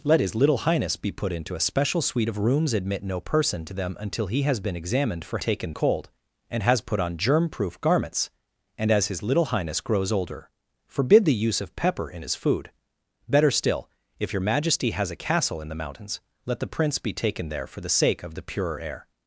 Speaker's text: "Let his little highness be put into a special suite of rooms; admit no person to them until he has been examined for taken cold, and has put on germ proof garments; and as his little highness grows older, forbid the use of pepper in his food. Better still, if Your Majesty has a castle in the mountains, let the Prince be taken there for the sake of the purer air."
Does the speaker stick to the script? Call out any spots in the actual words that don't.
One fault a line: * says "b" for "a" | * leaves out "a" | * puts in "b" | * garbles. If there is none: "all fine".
all fine